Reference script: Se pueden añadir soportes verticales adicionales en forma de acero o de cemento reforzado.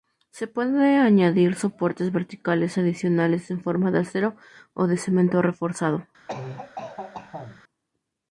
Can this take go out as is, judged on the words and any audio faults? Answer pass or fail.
fail